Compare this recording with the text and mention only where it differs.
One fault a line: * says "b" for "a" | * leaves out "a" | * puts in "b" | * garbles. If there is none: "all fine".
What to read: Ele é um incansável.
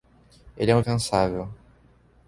all fine